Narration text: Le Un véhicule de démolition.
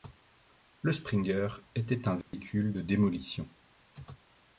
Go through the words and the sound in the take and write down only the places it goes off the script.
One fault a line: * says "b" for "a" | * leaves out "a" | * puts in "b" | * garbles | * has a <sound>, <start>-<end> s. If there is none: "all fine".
* puts in "Springer était"
* has a dropout, 2.2-2.3 s